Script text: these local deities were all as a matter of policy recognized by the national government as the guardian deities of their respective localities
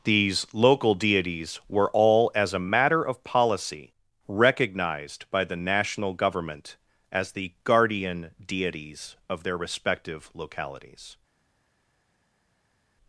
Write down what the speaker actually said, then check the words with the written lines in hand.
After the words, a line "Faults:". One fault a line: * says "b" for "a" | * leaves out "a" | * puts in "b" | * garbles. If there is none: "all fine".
these local deities were all as a matter of policy recognized by the national government as the guardian deities of their respective localities
Faults:
all fine